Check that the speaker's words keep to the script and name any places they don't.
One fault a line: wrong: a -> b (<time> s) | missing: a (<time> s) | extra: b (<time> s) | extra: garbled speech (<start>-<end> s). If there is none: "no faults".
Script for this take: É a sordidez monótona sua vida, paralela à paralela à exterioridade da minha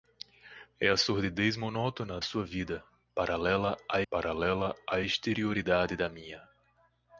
no faults